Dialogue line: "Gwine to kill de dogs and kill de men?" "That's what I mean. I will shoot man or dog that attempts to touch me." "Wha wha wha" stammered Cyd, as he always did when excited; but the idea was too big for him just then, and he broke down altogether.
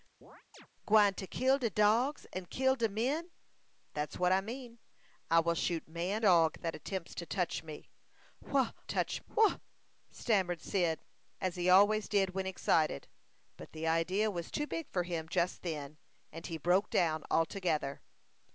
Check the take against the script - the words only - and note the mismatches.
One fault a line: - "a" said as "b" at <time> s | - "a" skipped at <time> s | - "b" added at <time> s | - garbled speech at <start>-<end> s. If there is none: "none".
- "or" skipped at 6.2 s
- "wha" said as "touch" at 8.8 s